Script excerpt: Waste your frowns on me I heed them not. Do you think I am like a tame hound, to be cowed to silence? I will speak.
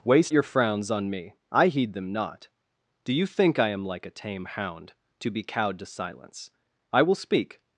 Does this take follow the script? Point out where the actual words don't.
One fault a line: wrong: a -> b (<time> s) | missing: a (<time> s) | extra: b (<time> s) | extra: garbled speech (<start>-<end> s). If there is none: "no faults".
no faults